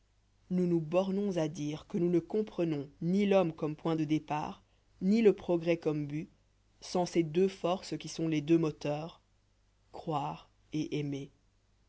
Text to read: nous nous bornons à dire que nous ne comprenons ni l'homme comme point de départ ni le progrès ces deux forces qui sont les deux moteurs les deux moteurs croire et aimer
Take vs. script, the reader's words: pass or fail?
fail